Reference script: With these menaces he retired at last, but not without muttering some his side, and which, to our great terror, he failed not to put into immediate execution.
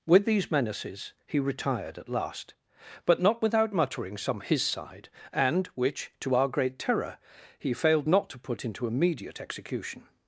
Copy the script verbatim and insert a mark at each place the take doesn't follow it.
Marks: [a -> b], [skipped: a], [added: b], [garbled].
With these menaces he retired at last, but not without muttering some his side, and which, to our great terror, he failed not to put into immediate execution.